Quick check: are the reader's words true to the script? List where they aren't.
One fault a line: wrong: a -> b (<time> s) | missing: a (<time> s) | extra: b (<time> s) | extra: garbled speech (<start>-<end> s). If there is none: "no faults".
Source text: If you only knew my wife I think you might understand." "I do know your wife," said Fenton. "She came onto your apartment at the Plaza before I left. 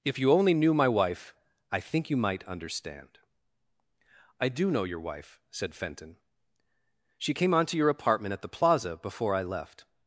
no faults